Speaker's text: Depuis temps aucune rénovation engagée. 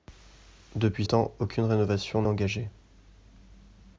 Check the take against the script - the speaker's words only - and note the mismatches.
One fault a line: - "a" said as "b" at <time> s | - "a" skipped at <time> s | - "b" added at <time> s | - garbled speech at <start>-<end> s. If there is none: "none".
none